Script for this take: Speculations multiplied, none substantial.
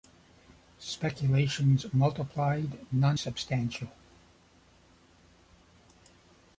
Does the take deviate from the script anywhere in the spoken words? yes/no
no